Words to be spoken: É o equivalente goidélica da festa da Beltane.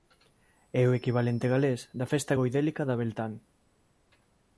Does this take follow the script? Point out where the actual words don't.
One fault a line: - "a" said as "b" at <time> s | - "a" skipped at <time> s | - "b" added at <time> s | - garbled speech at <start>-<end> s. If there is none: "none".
- "goidélica" said as "galés" at 1.5 s
- "goidélica" added at 2.4 s